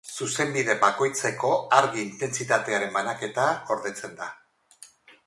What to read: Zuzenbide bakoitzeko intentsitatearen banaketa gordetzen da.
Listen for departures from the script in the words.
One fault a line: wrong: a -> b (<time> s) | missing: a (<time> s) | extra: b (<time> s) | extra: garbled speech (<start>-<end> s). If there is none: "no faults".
extra: argi (1.8 s)